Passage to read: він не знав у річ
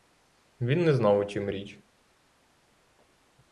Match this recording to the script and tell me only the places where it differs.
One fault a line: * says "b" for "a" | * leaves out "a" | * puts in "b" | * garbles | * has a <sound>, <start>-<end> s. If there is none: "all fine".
* puts in "чім"